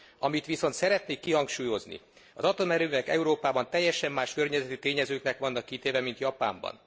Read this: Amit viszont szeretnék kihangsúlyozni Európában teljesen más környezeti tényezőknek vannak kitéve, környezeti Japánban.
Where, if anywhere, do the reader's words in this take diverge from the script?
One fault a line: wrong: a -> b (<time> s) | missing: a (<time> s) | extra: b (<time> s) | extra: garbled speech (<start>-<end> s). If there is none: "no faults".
extra: az atomerőművek (2.3 s)
wrong: környezeti -> mint (6.0 s)